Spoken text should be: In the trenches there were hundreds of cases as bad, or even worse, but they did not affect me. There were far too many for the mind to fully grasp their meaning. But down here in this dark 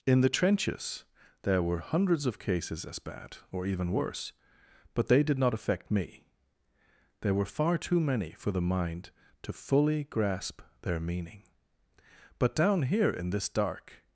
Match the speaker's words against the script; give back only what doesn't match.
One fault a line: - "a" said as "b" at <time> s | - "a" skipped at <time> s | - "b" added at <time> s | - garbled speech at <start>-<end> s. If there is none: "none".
none